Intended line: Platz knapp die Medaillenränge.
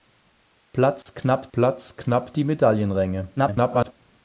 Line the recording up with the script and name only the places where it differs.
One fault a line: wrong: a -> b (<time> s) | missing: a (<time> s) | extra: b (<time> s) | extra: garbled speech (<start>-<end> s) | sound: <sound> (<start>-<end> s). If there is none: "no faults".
sound: dropout (1.0-1.1 s)
extra: platz knapp (1.5 s)
extra: garbled speech (3.4-3.9 s)